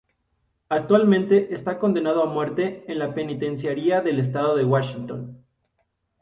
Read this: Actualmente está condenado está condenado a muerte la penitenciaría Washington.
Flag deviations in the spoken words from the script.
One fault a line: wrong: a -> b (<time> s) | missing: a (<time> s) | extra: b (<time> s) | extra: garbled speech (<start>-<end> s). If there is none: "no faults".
missing: está condenado (2.2 s)
extra: en (2.9 s)
extra: del estado de (4.0 s)